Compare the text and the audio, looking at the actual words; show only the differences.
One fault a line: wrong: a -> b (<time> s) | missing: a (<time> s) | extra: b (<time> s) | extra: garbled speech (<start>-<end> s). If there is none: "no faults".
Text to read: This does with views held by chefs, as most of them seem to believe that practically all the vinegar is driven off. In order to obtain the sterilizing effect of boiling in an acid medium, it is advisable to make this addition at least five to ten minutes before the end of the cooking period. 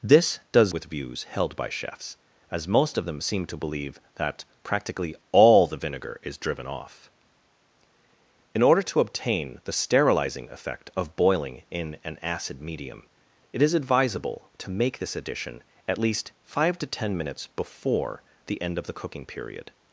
no faults